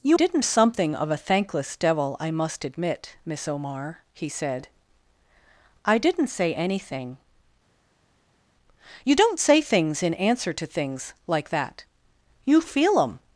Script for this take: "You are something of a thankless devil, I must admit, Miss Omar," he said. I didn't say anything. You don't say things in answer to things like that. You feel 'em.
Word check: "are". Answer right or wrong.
wrong